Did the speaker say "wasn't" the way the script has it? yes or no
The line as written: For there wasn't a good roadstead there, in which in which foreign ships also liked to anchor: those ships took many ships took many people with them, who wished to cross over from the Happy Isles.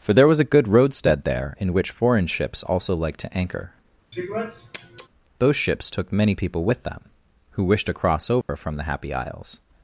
no